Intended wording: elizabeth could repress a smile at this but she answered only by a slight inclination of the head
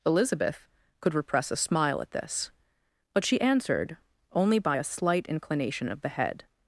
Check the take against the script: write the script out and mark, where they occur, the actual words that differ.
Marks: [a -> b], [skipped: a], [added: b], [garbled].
elizabeth could repress a smile at this but she answered only by a slight inclination of the head